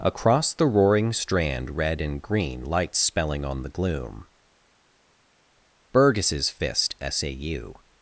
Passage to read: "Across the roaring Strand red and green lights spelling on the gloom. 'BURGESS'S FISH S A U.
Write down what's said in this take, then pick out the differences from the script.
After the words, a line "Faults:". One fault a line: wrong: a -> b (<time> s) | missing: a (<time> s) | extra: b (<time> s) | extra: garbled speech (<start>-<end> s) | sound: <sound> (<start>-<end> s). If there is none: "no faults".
"Across the roaring Strand red and green lights spelling on the gloom. 'BURGESS'S Fist S A U.
Faults:
wrong: FISH -> Fist (6.5 s)